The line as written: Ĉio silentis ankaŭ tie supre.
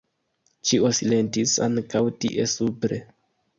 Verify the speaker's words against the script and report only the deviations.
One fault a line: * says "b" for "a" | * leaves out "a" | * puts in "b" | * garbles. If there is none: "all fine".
all fine